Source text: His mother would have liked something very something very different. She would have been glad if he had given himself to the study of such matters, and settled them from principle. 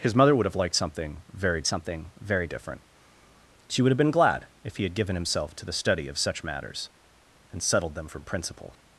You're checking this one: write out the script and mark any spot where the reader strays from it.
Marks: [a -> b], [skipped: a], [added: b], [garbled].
His mother would have liked something very something very different. She would have been glad if he had given himself to the study of such matters, and settled them from principle.